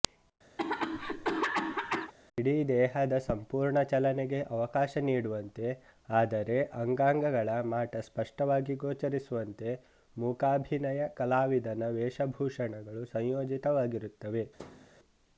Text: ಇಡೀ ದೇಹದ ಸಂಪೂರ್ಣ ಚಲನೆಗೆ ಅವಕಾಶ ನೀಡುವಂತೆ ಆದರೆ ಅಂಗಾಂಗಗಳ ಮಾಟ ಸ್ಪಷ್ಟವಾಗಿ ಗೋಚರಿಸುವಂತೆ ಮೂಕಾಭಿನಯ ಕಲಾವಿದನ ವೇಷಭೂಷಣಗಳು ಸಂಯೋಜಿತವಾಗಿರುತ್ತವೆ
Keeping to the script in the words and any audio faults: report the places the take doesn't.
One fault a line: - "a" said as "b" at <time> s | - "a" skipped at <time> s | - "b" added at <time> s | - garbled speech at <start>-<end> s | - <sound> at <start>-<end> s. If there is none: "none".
- cough at 0.6-2.1 s
- thud at 14.6-14.9 s